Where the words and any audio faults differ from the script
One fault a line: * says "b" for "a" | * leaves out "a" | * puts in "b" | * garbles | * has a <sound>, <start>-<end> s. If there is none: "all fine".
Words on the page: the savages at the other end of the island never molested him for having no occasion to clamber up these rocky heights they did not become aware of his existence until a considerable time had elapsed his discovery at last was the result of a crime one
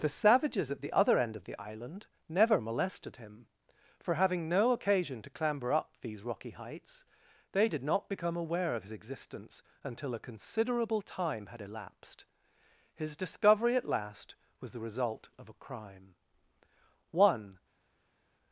all fine